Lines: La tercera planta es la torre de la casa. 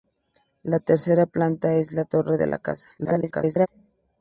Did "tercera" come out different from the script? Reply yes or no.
no